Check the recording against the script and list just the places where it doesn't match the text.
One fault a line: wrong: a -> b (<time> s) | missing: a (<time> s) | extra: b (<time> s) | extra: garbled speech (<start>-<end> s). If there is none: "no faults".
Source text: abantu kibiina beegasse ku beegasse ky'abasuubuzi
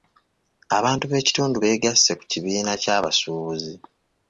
wrong: kibiina -> b'ekitundu (1.1 s)
wrong: beegasse -> kibiina (2.3 s)